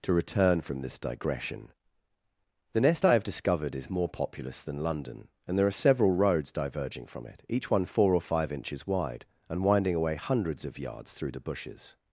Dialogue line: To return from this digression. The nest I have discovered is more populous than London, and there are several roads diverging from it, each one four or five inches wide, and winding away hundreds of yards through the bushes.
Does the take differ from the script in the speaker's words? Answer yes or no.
no